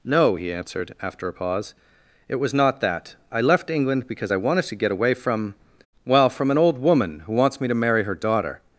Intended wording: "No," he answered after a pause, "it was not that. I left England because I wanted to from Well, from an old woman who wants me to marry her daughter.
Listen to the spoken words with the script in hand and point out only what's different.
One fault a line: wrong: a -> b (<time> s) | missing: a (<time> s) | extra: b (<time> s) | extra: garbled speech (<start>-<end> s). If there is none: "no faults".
extra: get away (4.8 s)